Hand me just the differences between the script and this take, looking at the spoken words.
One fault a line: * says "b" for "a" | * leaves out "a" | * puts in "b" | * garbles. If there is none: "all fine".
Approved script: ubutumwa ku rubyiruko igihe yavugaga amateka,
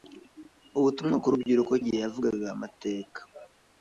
all fine